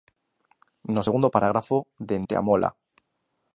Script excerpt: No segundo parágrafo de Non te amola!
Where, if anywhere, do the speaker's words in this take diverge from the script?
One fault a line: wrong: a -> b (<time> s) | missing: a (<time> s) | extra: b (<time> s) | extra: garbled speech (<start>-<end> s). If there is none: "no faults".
missing: Non (2.2 s)